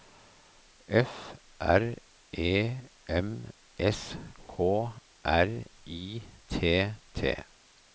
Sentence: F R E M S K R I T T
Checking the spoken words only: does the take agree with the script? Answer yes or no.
yes